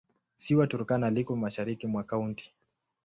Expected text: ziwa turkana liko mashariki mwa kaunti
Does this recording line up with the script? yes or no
yes